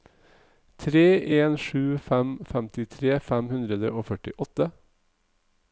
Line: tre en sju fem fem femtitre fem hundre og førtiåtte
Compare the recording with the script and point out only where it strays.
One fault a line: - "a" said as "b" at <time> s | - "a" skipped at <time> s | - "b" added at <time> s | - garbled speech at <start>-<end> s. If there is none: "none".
- "fem" skipped at 2.3 s